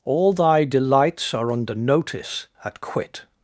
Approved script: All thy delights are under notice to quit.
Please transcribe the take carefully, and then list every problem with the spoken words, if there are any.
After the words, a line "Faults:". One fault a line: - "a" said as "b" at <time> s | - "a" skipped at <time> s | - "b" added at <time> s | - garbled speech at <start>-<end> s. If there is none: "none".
All thy delights are under notice at quit.
Faults:
- "to" said as "at" at 2.6 s